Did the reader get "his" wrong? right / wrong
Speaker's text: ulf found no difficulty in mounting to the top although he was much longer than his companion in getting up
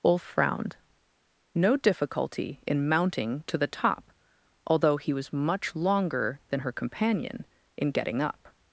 wrong